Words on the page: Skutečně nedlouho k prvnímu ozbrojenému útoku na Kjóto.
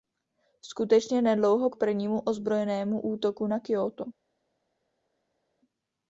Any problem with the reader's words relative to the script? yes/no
no